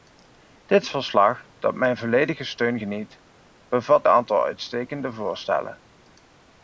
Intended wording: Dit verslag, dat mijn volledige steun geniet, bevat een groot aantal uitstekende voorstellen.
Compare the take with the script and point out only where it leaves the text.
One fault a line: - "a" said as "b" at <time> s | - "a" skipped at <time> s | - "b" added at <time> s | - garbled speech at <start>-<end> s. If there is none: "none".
- "een groot" skipped at 4.1 s